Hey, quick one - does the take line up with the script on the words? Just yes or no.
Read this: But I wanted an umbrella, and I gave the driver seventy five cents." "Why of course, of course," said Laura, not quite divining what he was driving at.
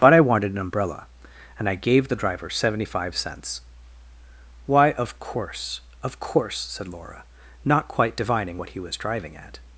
yes